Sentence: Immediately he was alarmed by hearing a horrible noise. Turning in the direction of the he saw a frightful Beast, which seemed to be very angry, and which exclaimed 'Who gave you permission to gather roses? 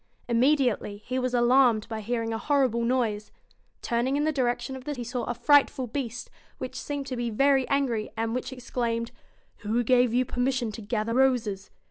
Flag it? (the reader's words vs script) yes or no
no